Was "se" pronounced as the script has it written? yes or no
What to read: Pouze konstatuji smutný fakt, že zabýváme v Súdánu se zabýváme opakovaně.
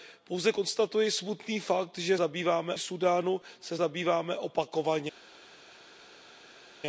yes